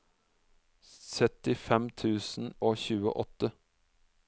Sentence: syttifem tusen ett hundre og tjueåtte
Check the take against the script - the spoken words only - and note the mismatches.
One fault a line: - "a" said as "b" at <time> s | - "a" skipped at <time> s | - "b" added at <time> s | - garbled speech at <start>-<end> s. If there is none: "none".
- "ett hundre" skipped at 2.5 s